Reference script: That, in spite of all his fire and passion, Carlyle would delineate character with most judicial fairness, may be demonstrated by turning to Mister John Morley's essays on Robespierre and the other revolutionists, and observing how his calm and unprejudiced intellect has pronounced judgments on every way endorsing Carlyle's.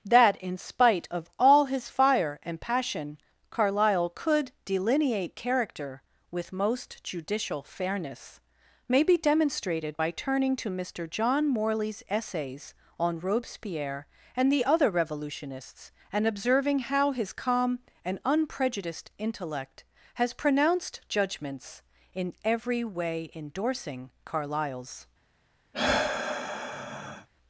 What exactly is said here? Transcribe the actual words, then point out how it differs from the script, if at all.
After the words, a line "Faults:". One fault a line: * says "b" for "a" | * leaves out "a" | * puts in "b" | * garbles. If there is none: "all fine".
That, in spite of all his fire and passion, Carlyle could delineate character with most judicial fairness, may be demonstrated by turning to Mister John Morley's essays on Robespierre and the other revolutionists, and observing how his calm and unprejudiced intellect has pronounced judgments in every way endorsing Carlyle's.
Faults:
* says "could" for "would"
* says "in" for "on"